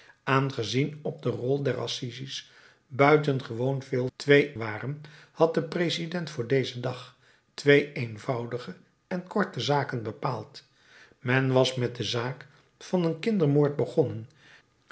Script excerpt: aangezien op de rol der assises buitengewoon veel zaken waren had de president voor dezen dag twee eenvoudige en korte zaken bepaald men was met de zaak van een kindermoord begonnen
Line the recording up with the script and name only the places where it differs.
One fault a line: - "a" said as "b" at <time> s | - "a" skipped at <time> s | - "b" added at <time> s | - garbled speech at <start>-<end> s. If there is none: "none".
- "zaken" said as "twee" at 4.1 s